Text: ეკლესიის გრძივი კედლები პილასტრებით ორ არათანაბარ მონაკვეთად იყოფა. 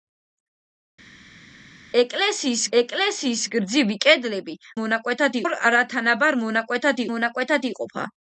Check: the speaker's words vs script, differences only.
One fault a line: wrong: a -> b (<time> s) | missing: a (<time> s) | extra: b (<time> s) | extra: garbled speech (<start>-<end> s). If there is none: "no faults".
extra: ეკლესიის (2.8 s)
wrong: პილასტრებით -> მონაკვეთად (4.8 s)
extra: მონაკვეთად (7.1 s)